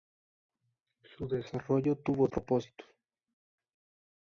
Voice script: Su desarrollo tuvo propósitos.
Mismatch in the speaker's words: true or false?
false